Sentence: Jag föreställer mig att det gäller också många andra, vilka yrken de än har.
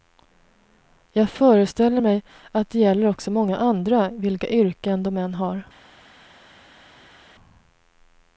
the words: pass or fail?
pass